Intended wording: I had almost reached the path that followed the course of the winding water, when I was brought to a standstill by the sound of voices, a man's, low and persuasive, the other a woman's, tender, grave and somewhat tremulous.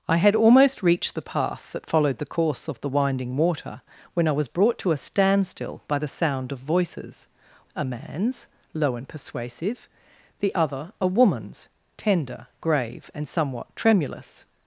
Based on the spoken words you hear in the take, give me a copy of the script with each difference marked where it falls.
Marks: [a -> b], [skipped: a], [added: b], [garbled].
I had almost reached the path that followed the course of the winding water, when I was brought to a standstill by the sound of voices, a man's, low and persuasive, the other a woman's, tender, grave and somewhat tremulous.